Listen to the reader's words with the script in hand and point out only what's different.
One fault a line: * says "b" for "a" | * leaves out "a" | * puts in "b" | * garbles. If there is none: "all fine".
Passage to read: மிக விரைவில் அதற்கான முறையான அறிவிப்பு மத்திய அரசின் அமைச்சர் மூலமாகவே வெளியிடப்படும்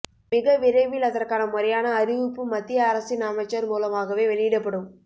all fine